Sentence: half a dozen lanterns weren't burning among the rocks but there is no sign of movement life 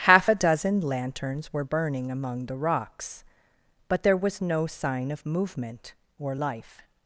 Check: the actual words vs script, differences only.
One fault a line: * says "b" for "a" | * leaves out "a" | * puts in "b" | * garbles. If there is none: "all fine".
* says "were" for "weren't"
* says "was" for "is"
* puts in "or"